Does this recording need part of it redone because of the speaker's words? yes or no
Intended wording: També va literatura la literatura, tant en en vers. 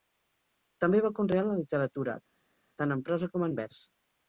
yes